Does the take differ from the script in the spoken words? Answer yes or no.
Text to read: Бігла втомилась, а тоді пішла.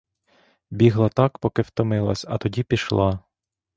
yes